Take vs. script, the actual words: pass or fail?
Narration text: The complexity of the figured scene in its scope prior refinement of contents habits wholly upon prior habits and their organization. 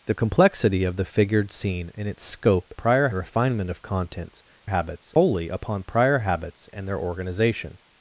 pass